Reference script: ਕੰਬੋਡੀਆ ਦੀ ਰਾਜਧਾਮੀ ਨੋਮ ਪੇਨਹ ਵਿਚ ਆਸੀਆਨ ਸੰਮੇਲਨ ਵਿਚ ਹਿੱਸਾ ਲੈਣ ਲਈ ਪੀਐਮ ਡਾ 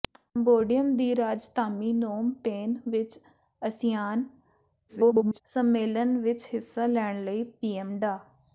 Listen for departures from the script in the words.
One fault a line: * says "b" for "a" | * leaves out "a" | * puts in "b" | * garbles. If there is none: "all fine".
* garbles